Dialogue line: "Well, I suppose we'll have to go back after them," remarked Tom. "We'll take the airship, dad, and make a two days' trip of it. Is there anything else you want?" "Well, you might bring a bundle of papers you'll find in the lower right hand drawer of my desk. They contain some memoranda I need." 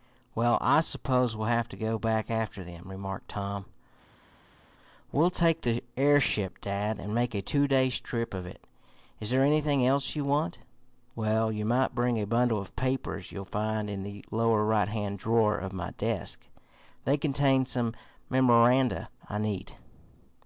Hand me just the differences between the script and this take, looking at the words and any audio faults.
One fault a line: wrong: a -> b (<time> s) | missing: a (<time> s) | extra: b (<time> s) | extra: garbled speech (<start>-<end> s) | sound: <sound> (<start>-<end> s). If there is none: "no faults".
no faults